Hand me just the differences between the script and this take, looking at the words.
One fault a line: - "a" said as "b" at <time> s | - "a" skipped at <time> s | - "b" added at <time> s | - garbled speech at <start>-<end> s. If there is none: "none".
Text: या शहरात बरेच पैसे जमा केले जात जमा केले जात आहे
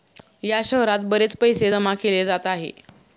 - "जमा केले जात" skipped at 2.5 s